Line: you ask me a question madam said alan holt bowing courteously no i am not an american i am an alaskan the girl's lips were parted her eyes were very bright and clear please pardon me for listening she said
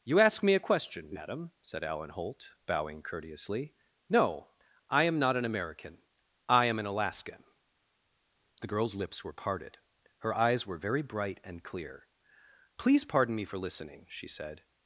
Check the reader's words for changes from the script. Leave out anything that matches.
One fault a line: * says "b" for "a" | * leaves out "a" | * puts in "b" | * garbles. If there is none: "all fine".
all fine